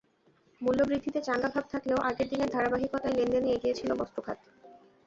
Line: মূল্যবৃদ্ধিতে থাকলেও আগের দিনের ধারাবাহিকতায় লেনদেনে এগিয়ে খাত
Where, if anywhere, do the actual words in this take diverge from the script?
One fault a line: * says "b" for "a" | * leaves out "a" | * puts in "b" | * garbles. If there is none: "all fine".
* puts in "চাঙা ভাব"
* puts in "ছিল বস্ত্র"